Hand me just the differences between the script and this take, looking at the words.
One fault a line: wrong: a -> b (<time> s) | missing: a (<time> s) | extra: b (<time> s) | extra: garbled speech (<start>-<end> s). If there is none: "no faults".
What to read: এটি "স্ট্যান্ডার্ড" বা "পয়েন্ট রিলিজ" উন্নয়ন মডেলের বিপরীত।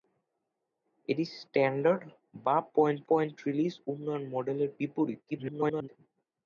extra: পয়েন্ট (3.1 s)
extra: garbled speech (5.3-5.9 s)